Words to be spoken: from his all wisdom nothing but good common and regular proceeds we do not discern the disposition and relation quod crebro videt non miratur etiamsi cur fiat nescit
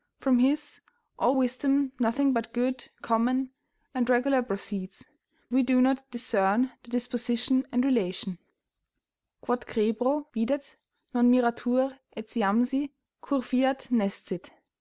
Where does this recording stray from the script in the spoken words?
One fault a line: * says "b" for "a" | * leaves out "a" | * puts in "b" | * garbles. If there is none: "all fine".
all fine